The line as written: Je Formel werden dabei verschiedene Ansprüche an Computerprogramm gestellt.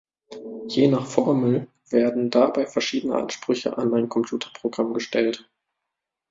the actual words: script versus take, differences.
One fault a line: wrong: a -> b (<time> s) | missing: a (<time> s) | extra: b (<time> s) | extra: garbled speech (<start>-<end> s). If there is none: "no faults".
extra: nach (0.9 s)
extra: ein (3.9 s)